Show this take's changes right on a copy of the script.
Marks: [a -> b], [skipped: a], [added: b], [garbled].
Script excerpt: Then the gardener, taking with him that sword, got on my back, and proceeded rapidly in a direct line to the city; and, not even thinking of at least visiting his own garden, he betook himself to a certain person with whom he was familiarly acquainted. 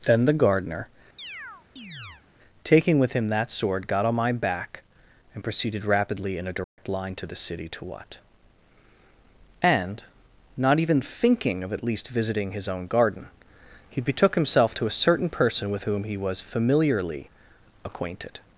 Then the gardener, taking with him that sword, got on my back, and proceeded rapidly in a direct line to the city; [added: to what] and, not even thinking of at least visiting his own garden, he betook himself to a certain person with whom he was familiarly acquainted.